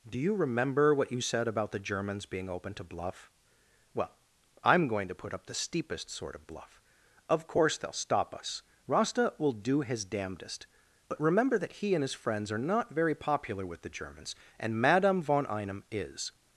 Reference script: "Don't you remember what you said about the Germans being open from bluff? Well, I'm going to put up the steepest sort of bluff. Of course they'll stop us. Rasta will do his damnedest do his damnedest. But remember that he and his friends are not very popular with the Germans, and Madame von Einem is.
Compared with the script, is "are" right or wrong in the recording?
right